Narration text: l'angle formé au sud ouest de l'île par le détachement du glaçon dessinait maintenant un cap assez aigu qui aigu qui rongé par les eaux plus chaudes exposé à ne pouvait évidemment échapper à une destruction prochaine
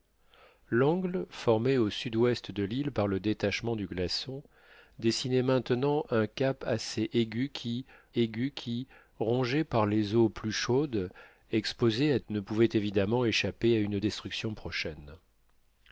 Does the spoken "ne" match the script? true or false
true